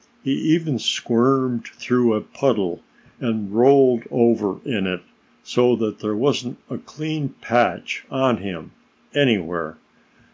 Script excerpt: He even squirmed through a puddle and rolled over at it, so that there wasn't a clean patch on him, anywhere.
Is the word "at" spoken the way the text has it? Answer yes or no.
no